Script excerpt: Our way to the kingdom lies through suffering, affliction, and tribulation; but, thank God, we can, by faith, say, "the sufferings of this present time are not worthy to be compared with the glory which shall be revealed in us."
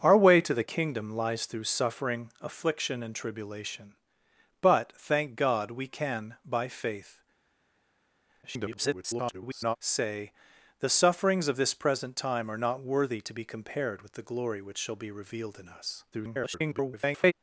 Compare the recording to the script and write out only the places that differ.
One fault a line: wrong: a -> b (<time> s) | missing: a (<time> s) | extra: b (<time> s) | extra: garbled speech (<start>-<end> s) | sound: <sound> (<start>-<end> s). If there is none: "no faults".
extra: garbled speech (8.4-9.8 s)
extra: garbled speech (16.1-17.3 s)